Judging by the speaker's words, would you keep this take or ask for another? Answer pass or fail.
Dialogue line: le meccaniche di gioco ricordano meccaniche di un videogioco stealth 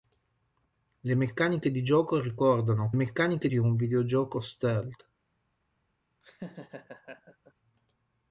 pass